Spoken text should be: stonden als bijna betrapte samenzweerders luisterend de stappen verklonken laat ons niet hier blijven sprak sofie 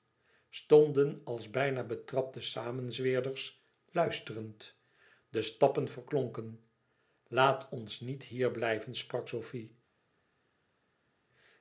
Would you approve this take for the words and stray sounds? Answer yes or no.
yes